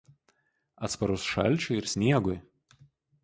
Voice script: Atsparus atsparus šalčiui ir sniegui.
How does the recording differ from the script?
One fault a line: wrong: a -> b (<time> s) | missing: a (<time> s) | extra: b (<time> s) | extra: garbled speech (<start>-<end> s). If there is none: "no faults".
missing: atsparus (1.3 s)